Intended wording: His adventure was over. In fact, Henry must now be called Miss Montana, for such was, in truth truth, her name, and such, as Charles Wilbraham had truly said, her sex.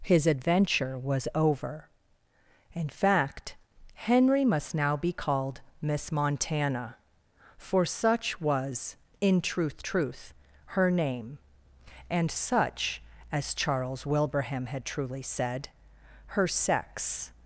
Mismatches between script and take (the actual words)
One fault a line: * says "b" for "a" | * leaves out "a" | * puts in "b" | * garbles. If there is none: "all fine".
all fine